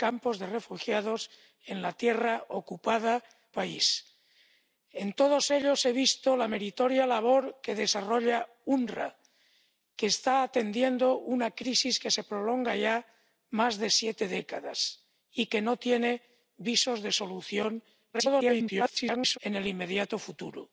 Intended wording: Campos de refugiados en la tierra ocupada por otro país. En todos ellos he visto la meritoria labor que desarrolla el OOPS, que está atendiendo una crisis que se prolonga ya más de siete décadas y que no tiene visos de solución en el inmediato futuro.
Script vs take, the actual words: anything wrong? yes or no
yes